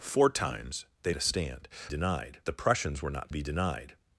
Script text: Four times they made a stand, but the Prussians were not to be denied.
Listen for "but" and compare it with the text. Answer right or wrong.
wrong